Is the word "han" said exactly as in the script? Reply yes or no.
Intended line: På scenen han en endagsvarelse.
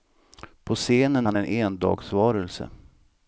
yes